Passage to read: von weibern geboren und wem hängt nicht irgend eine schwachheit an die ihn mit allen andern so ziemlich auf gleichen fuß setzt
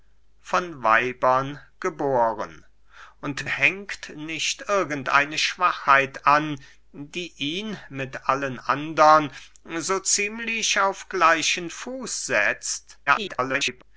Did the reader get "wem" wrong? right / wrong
wrong